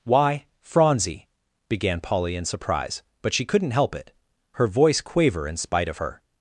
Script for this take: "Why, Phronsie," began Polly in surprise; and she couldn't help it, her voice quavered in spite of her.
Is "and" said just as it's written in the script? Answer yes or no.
no